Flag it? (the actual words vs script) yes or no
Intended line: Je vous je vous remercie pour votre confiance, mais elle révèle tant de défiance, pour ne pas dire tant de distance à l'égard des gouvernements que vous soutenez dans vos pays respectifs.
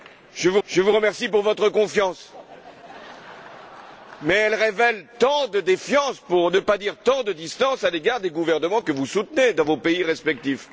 no